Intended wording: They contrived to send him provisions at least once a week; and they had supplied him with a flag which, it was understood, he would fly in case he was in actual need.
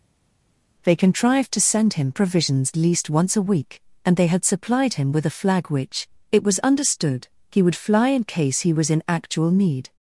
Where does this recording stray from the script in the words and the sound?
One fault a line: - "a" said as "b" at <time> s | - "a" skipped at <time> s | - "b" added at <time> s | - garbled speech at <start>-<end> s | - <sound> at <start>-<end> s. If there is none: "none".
- "at" skipped at 2.7 s